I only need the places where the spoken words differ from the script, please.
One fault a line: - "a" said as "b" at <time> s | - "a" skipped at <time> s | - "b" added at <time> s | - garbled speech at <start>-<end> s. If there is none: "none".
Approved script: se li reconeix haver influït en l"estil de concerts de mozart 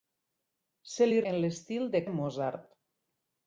- "reconeix haver influït" skipped at 1.2 s
- "concerts" skipped at 2.0 s